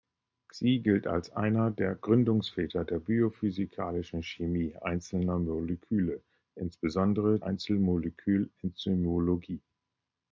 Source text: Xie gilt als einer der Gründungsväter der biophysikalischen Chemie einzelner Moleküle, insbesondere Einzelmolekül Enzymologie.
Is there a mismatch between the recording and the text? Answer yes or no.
no